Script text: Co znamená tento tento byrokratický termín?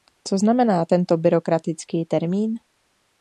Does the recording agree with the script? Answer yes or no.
no